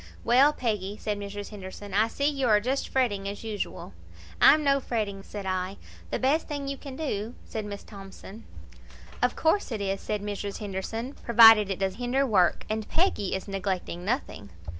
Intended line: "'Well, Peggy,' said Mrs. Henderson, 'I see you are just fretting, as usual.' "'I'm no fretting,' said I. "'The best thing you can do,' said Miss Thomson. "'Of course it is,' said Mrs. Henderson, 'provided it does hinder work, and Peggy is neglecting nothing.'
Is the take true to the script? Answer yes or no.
yes